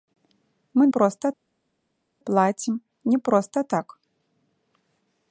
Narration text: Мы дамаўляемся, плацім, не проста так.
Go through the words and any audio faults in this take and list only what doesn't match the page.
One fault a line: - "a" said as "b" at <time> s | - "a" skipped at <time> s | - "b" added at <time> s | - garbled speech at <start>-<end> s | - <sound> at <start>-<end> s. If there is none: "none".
- "дамаўляемся" said as "проста" at 1.0 s